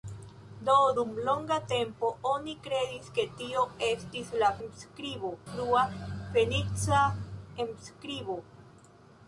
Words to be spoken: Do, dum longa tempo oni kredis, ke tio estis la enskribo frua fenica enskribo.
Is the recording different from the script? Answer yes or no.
no